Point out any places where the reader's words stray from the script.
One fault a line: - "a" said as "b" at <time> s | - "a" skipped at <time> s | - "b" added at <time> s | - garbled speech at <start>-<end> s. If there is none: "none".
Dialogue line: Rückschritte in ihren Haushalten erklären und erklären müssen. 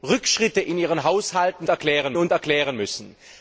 none